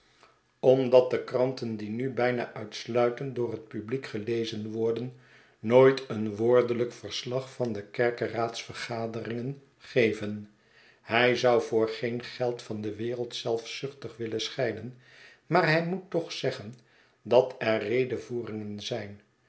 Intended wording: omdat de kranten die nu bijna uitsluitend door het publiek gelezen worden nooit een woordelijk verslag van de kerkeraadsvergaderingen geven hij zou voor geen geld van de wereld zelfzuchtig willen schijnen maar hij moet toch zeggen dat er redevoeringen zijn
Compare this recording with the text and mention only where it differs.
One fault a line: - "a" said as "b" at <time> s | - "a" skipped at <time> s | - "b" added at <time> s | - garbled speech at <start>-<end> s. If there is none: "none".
none